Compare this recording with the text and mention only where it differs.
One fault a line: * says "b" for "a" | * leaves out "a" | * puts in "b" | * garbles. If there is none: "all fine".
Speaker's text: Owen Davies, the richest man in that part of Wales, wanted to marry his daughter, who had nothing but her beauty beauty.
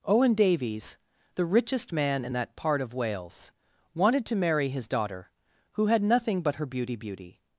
all fine